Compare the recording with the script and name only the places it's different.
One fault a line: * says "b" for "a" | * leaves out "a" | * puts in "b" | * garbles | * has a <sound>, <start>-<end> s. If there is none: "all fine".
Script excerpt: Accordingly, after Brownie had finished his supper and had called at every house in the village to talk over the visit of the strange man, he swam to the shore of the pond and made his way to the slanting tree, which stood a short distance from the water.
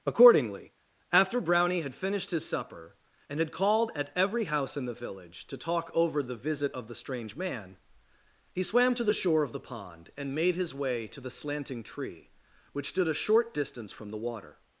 all fine